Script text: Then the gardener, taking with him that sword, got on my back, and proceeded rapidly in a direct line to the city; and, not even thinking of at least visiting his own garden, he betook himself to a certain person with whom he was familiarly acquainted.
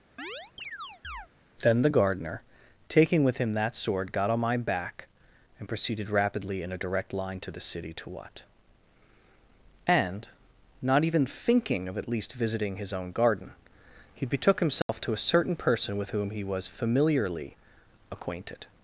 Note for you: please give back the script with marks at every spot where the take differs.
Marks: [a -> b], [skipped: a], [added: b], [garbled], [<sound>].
[chirp] Then the gardener, taking with him that sword, got on my back, and proceeded rapidly in a direct line to the city; [added: to what] and, not even thinking of at least visiting his own garden, he betook himself [dropout] to a certain person with whom he was familiarly acquainted.